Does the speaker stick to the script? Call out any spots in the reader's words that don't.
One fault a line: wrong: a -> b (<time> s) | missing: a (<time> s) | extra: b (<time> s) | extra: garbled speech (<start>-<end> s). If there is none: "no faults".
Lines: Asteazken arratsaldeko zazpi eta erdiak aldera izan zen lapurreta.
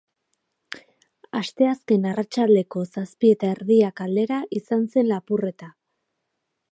no faults